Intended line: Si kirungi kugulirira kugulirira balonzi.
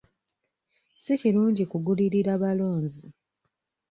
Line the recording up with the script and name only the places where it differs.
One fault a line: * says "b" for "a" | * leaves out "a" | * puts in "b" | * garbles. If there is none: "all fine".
* leaves out "kugulirira"